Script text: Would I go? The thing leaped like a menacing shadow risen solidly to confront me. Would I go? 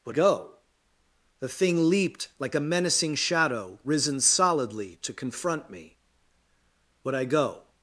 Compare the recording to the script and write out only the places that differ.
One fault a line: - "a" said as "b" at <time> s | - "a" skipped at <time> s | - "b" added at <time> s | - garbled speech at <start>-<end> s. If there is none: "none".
- "I" skipped at 0.1 s